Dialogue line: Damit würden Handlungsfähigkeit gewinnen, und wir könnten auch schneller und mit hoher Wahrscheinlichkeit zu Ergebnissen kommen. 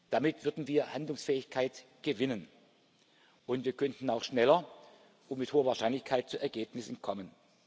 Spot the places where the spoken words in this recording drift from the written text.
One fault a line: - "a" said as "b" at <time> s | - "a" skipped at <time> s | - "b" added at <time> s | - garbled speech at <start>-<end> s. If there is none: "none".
- "wir" added at 0.7 s